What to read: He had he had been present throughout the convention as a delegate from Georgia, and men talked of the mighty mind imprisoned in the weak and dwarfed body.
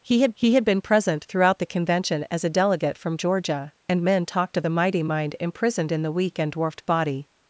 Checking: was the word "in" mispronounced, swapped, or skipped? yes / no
no